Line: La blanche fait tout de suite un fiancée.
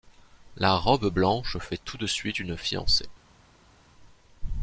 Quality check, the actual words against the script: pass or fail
fail